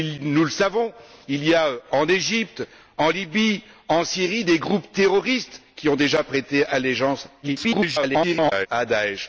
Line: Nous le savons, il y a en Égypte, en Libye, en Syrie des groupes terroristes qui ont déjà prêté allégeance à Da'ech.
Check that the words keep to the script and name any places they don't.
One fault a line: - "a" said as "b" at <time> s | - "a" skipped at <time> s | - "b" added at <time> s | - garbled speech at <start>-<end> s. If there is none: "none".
- garbled speech at 7.4-8.7 s